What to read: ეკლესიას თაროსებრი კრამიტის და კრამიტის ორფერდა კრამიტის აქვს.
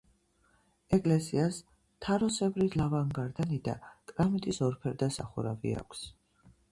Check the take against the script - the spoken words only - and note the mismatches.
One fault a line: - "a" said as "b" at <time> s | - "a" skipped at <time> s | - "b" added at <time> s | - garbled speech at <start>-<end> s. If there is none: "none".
- "კრამიტის" said as "ლავგარდანი" at 2.8 s
- "კრამიტის" said as "სახურავი" at 5.2 s